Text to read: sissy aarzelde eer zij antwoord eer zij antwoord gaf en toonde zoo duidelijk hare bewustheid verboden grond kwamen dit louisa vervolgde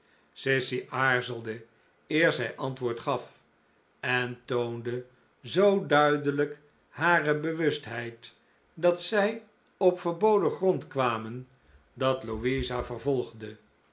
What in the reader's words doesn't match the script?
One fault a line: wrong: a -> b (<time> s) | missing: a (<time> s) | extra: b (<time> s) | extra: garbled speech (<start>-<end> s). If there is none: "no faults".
missing: eer zij antwoord (3.0 s)
extra: dat zij op (8.7 s)
wrong: dit -> dat (11.9 s)